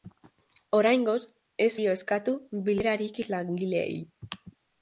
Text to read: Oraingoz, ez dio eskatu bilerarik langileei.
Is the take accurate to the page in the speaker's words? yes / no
yes